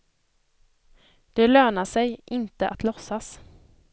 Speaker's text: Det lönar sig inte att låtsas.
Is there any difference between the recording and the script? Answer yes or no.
no